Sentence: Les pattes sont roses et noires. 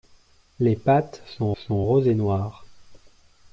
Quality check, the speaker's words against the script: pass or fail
fail